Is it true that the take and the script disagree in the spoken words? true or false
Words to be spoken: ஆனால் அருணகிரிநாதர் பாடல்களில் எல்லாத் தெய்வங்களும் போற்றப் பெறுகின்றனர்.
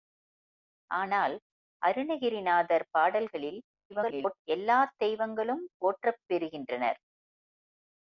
true